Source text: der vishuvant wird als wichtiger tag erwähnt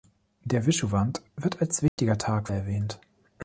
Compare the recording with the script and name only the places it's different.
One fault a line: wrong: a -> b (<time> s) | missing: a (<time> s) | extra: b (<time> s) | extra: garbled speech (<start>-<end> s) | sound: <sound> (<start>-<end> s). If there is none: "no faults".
sound: dropout (1.9-2.0 s)